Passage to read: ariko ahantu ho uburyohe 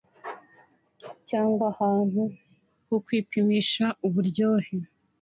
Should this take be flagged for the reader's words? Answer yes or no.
yes